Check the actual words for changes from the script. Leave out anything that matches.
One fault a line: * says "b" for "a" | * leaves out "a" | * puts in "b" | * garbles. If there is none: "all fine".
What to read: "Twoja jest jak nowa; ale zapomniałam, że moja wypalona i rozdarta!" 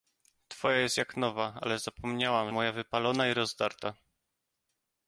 * leaves out "że"